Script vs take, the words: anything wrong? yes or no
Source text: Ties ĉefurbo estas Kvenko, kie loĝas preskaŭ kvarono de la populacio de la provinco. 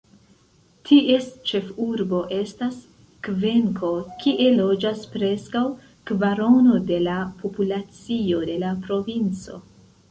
no